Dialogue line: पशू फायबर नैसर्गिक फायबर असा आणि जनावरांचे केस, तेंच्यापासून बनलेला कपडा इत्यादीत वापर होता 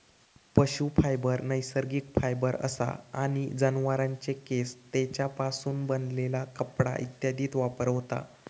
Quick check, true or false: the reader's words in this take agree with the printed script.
true